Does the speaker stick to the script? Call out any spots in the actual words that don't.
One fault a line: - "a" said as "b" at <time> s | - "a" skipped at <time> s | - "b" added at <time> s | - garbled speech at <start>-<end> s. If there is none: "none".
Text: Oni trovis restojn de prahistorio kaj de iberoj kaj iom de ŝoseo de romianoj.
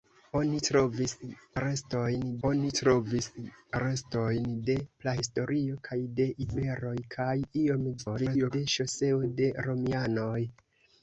- "oni trovis restojn" added at 2.5 s
- garbled speech at 8.0-8.5 s